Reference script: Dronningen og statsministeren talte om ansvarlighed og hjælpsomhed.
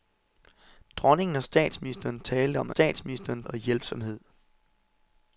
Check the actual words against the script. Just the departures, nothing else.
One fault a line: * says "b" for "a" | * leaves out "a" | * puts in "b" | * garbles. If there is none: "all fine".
* says "statsministeren" for "ansvarlighed"